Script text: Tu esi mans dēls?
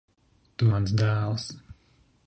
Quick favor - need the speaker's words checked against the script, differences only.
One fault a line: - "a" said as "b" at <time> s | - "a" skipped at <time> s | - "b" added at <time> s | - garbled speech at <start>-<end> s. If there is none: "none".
- "esi" skipped at 0.7 s